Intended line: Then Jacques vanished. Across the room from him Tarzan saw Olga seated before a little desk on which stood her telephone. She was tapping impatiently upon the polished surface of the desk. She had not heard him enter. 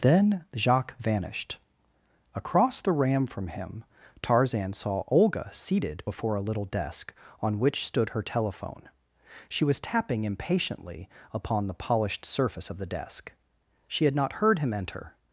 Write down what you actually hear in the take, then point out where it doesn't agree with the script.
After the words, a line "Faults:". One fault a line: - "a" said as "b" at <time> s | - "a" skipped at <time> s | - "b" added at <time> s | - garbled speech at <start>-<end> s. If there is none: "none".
Then Jacques vanished. Across the ram from him Tarzan saw Olga seated before a little desk on which stood her telephone. She was tapping impatiently upon the polished surface of the desk. She had not heard him enter.
Faults:
- "room" said as "ram" at 2.9 s